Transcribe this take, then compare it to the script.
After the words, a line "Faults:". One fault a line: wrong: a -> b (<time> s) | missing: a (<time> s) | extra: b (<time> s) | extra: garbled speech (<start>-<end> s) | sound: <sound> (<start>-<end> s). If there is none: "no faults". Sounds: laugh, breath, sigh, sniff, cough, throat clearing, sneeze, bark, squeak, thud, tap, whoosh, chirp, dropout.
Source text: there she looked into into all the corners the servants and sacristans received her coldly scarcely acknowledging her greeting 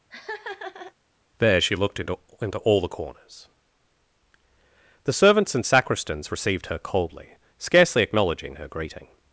there she looked into into all the corners the servants and sacristans received her coldly scarcely acknowledging her greeting
Faults:
sound: laugh (0.1-0.9 s)